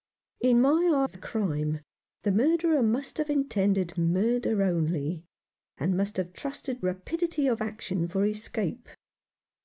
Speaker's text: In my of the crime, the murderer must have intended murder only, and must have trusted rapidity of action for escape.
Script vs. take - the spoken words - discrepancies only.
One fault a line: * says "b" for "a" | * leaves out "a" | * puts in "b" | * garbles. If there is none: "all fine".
all fine